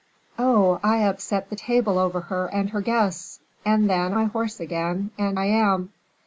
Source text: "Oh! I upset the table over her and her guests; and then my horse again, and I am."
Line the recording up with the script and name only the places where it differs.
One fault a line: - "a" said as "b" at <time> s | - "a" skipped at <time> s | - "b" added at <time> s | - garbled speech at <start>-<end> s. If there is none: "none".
none